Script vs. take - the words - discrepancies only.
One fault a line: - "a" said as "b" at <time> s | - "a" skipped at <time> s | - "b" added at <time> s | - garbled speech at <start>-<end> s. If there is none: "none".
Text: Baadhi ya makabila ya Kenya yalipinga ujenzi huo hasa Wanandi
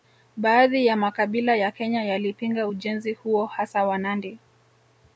none